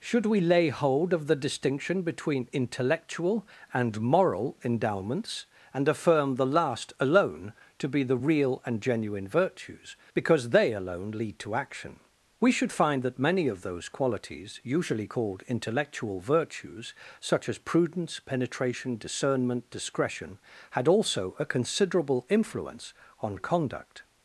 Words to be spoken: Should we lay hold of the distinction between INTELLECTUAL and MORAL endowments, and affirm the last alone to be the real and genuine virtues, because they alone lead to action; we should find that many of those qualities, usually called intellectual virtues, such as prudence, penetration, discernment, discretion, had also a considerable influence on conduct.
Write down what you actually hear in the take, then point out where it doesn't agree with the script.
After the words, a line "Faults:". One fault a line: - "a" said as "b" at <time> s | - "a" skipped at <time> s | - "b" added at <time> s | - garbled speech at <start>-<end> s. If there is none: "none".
Should we lay hold of the distinction between INTELLECTUAL and MORAL endowments, and affirm the last alone to be the real and genuine virtues, because they alone lead to action; we should find that many of those qualities, usually called intellectual virtues, such as prudence, penetration, discernment, discretion, had also a considerable influence on conduct.
Faults:
none